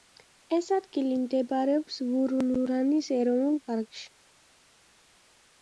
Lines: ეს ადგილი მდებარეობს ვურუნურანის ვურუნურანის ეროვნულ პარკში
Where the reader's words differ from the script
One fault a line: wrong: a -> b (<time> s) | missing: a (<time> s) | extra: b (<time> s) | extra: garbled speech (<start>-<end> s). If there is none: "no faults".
missing: ვურუნურანის (3.1 s)